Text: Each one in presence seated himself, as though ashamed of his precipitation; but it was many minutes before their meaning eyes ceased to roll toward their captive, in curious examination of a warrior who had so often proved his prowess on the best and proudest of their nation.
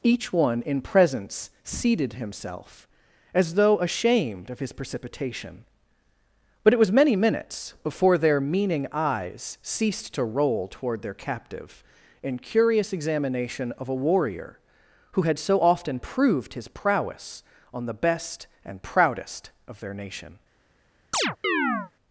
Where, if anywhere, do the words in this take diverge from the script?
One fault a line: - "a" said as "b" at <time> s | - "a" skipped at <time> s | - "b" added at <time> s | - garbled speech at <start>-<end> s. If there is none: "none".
none